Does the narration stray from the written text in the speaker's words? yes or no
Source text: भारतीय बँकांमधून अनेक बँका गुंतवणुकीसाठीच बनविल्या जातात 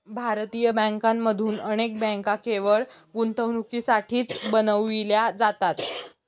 yes